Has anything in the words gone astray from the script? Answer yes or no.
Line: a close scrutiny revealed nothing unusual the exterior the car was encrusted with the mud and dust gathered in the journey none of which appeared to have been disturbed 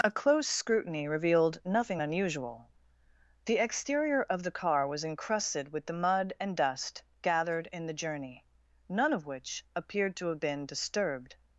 yes